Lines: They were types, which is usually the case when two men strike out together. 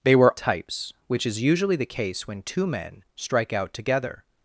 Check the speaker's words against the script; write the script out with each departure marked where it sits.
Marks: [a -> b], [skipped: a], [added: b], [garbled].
They were types, which is usually the case when two men strike out together.